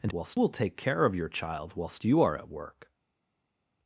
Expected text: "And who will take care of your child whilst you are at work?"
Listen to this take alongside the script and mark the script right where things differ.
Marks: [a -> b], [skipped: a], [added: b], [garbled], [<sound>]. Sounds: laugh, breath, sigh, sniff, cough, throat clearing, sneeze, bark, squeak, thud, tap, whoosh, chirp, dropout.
"And [who -> whilst] will take care of your child whilst you are at work?"